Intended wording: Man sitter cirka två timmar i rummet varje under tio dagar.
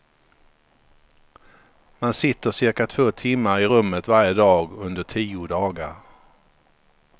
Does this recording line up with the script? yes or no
no